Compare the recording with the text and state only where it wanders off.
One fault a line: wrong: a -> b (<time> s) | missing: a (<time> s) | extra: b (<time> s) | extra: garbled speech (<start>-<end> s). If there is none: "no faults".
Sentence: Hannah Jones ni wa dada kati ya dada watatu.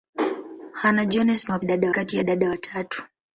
no faults